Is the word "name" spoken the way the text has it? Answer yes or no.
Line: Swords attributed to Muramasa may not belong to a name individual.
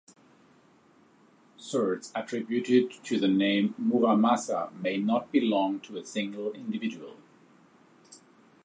no